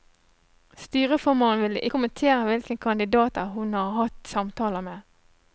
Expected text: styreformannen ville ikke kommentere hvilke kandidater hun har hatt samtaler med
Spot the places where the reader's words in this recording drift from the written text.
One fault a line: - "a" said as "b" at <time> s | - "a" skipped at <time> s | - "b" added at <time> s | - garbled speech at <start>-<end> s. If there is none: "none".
- "ikke" skipped at 1.8 s